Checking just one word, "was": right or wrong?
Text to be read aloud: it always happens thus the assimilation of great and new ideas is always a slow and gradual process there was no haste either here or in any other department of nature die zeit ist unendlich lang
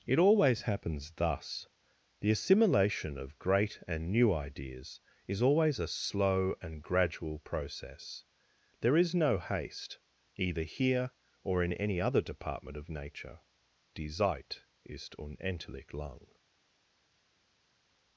wrong